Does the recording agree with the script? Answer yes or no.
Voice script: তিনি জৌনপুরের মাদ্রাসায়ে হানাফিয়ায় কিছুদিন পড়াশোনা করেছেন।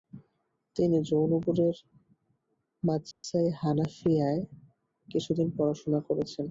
yes